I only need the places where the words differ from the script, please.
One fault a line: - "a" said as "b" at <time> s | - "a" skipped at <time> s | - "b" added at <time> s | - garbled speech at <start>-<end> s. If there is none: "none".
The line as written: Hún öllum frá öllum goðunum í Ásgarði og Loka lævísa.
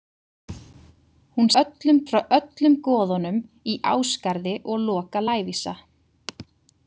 none